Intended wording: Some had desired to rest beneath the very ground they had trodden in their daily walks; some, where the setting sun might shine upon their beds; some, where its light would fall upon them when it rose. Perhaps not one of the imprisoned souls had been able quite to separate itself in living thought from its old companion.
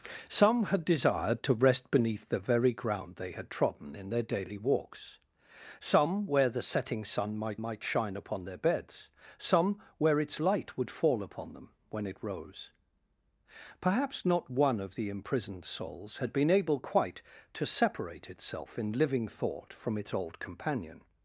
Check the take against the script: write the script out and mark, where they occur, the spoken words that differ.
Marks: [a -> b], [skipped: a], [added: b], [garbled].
Some had desired to rest beneath the very ground they had trodden in their daily walks; some, where the setting sun might [added: might] shine upon their beds; some, where its light would fall upon them when it rose. Perhaps not one of the imprisoned souls had been able quite to separate itself in living thought from its old companion.